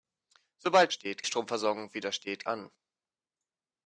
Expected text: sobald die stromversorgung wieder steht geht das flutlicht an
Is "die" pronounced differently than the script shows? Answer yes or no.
yes